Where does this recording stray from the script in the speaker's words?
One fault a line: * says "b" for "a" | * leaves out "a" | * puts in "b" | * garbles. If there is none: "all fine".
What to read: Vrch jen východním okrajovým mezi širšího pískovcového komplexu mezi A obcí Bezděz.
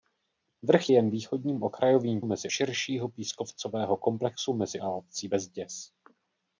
all fine